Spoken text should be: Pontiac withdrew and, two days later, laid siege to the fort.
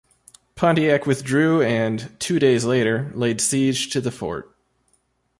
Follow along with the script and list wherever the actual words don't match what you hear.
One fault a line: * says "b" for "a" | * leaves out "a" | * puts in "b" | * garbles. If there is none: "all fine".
all fine